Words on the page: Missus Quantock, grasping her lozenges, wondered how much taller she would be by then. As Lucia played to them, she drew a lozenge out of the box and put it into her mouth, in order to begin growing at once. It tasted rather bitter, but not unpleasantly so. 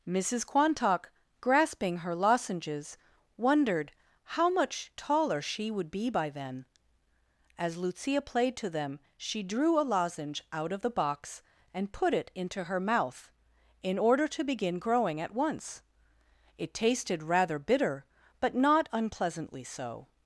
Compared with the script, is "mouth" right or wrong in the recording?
right